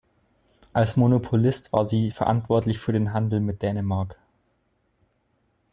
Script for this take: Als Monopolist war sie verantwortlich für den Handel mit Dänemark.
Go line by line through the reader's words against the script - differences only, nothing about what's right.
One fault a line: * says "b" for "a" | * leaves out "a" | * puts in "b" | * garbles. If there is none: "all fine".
all fine